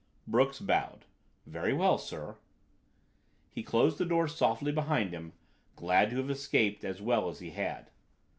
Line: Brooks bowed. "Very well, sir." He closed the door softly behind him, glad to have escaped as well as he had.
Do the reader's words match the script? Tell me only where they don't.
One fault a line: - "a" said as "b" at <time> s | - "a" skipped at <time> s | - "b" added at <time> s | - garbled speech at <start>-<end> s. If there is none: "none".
none